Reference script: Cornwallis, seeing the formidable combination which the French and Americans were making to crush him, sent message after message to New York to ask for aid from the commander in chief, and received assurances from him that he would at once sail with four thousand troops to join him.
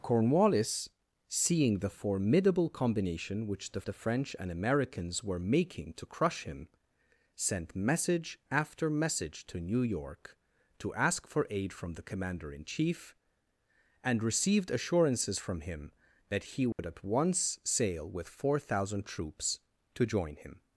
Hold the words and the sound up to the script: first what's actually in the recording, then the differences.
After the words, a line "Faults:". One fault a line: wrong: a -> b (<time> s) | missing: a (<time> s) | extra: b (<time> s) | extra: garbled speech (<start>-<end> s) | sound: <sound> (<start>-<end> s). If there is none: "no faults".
Cornwallis, seeing the formidable combination which the the French and Americans were making to crush him, sent message after message to New York to ask for aid from the commander in chief, and received assurances from him that he would at once sail with four thousand troops to join him.
Faults:
extra: the (3.8 s)
sound: dropout (16.7-16.8 s)